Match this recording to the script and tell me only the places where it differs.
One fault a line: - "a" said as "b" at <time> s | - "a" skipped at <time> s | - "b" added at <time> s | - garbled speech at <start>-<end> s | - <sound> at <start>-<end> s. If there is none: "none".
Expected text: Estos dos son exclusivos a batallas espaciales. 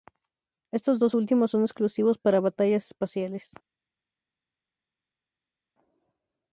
- "últimos" added at 1.1 s
- "a" said as "para" at 2.2 s